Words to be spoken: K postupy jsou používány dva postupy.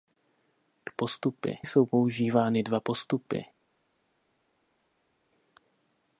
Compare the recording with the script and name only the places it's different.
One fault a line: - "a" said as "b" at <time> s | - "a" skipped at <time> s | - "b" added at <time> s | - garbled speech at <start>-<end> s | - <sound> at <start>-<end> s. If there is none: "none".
none